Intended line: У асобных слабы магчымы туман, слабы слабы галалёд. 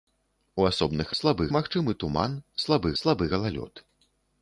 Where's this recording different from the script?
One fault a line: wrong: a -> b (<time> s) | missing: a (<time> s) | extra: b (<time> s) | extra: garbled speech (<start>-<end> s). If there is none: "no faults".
no faults